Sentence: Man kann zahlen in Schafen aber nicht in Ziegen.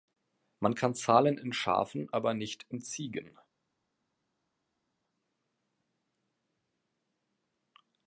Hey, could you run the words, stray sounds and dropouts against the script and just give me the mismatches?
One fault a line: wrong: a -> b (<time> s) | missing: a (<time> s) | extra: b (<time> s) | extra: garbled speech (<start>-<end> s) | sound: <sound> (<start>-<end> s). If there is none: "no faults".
no faults